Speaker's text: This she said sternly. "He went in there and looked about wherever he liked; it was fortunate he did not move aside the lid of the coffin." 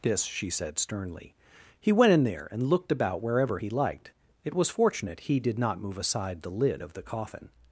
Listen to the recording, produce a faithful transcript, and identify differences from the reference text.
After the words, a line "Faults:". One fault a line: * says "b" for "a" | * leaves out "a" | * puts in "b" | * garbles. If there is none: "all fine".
This she said sternly. "He went in there and looked about wherever he liked; it was fortunate he did not move aside the lid of the coffin."
Faults:
all fine